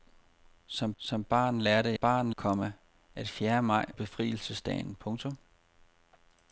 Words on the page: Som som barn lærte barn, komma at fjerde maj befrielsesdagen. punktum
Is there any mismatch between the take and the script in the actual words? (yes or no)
no